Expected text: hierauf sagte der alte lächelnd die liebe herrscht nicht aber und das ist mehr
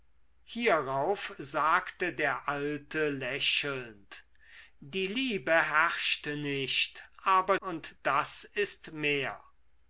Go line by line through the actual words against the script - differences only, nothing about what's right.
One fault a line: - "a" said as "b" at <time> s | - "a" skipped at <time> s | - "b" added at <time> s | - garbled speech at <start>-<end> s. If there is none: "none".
none